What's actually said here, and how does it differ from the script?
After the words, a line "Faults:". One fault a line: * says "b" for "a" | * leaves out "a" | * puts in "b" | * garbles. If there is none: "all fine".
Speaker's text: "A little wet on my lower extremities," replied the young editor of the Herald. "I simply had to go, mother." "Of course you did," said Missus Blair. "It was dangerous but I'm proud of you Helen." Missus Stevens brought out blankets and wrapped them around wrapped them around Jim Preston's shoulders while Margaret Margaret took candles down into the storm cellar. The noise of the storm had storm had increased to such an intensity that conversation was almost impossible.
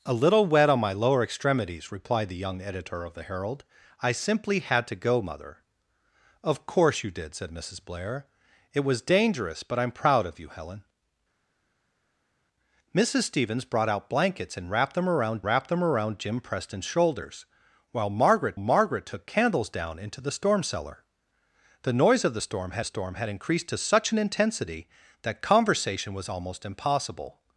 "A little wet on my lower extremities," replied the young editor of the Herald. "I simply had to go, mother." "Of course you did," said Missus Blair. "It was dangerous but I'm proud of you Helen." Missus Stevens brought out blankets and wrapped them around wrapped them around Jim Preston's shoulders while Margaret Margaret took candles down into the storm cellar. The noise of the storm had storm had increased to such an intensity that conversation was almost impossible.
Faults:
all fine